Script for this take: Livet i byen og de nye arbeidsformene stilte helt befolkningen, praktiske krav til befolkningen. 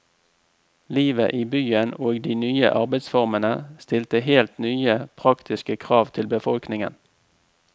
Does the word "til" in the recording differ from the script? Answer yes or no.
no